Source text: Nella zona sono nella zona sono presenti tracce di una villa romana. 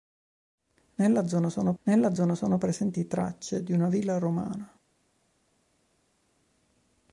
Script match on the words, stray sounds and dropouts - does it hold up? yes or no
yes